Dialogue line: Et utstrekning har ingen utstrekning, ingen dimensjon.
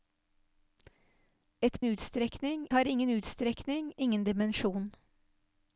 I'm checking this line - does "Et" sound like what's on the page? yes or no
yes